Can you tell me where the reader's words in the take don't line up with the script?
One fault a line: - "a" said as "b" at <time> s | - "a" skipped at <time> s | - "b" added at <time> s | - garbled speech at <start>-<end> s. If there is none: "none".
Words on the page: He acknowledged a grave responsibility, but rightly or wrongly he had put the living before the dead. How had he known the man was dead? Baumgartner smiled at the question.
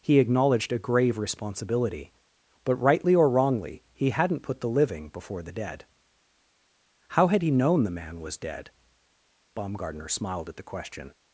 - "had" said as "hadn't" at 4.1 s